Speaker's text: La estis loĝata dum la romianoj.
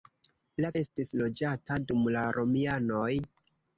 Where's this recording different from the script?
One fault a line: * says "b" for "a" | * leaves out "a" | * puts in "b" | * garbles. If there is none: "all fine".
all fine